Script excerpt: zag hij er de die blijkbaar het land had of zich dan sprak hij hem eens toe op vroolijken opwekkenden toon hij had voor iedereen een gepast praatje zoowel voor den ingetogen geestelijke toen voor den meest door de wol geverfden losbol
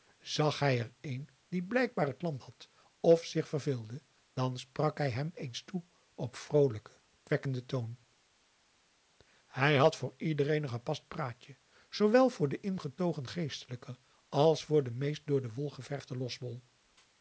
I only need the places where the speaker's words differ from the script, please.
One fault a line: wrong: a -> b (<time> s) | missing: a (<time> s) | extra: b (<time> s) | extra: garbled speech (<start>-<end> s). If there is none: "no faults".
wrong: de -> een (1.0 s)
extra: verveelde (3.5 s)
wrong: toen -> als (14.3 s)